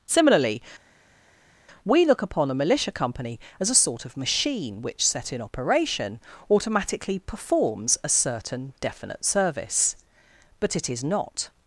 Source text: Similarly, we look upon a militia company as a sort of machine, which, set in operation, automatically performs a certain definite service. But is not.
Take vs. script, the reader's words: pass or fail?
fail